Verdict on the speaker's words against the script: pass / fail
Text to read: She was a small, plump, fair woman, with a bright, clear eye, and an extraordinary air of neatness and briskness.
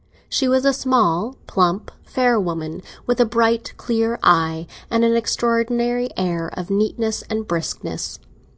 pass